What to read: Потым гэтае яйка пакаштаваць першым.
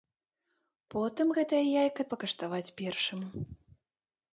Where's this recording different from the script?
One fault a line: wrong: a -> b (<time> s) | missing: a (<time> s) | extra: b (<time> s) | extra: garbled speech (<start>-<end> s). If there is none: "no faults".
no faults